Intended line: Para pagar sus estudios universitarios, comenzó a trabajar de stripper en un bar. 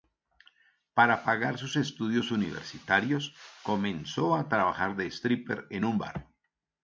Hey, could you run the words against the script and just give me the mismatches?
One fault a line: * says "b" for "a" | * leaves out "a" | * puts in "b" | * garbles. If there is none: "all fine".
all fine